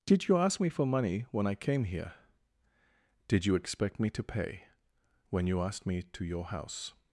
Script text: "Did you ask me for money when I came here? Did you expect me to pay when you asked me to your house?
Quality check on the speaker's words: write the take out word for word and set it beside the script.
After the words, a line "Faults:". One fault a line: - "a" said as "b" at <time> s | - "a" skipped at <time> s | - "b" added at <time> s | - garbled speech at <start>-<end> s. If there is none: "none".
"Did you ask me for money when I came here? Did you expect me to pay when you asked me to your house?
Faults:
none